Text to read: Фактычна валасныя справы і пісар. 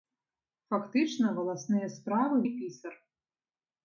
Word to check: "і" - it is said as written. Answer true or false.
true